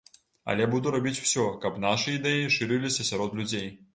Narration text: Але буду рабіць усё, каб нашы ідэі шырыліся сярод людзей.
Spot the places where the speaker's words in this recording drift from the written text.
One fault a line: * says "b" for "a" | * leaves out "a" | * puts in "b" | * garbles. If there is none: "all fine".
all fine